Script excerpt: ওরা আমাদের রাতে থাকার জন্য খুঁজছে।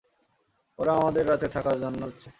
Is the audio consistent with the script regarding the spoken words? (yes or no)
yes